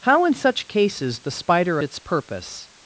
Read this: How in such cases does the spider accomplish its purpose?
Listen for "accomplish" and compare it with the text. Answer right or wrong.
wrong